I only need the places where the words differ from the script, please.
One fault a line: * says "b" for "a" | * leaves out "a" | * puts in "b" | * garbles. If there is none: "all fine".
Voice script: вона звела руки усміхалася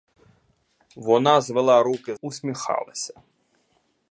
all fine